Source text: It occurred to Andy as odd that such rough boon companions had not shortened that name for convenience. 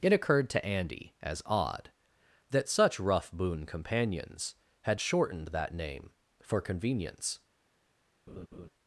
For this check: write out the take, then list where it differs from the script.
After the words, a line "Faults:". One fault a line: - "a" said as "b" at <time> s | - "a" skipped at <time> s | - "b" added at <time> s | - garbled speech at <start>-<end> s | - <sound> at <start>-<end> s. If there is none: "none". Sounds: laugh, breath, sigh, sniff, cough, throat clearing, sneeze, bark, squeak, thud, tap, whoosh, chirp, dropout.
It occurred to Andy as odd that such rough boon companions had shortened that name for convenience.
Faults:
- "not" skipped at 5.0 s
- laugh at 8.3-8.7 s